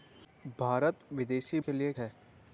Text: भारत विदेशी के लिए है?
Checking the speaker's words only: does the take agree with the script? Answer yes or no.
yes